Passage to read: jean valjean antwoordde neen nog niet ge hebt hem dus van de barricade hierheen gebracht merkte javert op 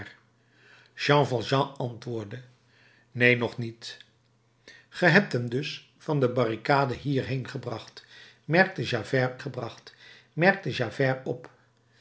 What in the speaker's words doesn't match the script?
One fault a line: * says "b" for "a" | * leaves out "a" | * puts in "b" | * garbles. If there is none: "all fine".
* puts in "gebracht merkte javert"